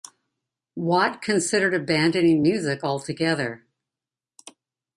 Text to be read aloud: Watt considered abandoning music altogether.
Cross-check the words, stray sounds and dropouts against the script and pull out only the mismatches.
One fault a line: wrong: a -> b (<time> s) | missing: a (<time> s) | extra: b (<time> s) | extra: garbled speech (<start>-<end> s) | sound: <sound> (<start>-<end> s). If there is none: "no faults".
no faults